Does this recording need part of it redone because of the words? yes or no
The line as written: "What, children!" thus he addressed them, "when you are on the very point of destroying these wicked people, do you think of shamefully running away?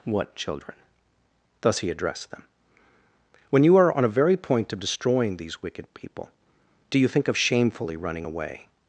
yes